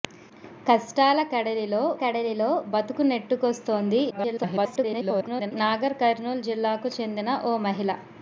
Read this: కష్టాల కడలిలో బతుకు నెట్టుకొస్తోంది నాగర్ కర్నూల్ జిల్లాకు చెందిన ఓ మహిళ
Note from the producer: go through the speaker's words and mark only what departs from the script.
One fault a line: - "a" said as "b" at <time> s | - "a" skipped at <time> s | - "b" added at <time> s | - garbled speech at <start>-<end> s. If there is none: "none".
- "కడలిలో" added at 2.0 s
- garbled speech at 4.1-5.5 s